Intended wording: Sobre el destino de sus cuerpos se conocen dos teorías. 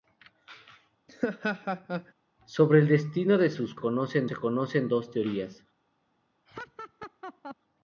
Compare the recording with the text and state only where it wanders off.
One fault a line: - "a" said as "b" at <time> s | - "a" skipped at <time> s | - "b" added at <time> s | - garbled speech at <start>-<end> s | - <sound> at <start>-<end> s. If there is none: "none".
- laugh at 1.1-2.1 s
- "cuerpos" said as "conocen" at 3.7 s
- laugh at 6.5-7.6 s